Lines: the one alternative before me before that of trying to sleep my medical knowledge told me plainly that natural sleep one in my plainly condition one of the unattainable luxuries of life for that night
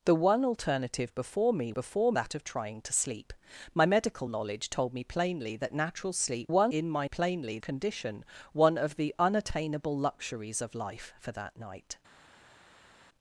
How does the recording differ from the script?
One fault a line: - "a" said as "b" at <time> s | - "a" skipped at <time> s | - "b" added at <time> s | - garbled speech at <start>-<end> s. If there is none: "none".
none